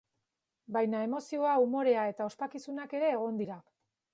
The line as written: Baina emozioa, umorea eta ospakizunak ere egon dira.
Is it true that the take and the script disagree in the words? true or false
false